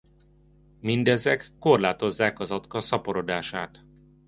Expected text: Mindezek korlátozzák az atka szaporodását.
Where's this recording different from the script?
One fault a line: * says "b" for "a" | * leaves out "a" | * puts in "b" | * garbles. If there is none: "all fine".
all fine